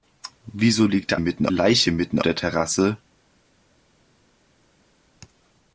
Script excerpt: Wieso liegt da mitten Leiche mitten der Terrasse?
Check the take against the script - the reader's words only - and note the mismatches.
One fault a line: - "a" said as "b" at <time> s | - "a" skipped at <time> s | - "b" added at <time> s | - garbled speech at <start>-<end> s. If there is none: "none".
none